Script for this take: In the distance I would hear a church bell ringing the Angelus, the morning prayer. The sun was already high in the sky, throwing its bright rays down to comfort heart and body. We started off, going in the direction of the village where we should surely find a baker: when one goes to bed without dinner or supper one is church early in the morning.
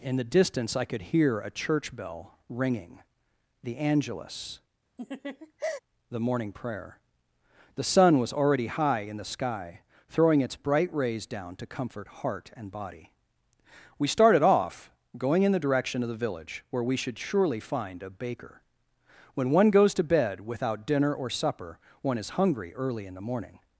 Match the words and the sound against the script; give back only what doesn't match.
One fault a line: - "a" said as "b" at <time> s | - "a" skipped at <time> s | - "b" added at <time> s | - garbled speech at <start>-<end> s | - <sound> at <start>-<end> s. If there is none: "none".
- "would" said as "could" at 0.8 s
- laugh at 5.0-5.8 s
- "church" said as "hungry" at 22.4 s